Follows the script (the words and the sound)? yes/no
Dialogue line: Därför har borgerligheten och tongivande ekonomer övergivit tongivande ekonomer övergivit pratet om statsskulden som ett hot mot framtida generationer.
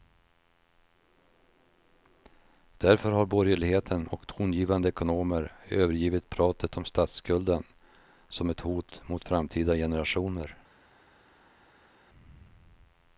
no